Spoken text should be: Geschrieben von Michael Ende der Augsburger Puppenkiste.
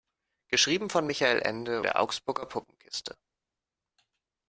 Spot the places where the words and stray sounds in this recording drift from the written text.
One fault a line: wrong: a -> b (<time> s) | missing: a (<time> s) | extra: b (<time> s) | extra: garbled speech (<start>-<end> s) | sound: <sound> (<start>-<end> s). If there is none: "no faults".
no faults